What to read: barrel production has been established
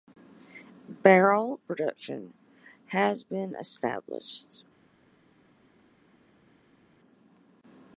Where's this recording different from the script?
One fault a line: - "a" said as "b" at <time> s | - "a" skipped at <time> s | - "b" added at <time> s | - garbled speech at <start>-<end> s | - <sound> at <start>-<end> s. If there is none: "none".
none